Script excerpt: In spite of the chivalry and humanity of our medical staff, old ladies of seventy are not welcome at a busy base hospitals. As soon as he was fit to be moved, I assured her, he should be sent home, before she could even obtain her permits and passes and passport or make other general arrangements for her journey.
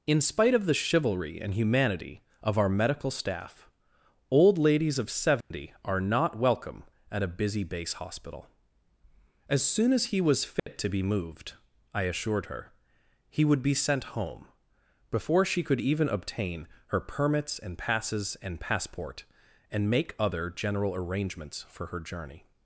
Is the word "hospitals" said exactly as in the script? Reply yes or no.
no